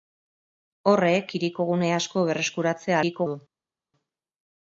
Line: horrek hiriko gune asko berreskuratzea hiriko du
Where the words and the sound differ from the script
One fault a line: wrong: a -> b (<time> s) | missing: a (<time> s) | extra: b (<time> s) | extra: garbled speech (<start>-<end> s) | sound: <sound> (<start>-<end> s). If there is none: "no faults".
no faults